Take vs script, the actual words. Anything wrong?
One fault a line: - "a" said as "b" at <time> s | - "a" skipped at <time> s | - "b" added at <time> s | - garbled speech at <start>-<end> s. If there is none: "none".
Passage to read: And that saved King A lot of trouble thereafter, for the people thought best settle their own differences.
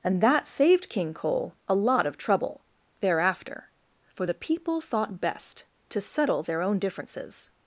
- "Cole" added at 1.1 s
- "to" added at 5.9 s